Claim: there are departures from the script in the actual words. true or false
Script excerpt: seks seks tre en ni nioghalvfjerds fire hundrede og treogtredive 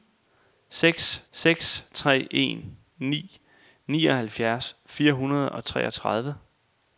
false